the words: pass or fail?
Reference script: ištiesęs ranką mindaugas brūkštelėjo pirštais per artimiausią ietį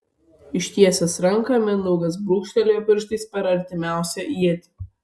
pass